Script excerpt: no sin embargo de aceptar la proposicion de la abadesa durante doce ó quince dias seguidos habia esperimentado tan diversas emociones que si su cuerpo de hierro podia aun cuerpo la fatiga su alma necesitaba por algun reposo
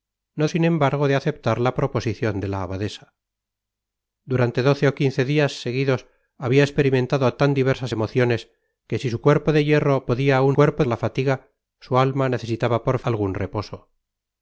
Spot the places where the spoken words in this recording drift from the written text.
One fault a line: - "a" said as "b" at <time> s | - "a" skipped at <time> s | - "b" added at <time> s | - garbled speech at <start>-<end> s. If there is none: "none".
none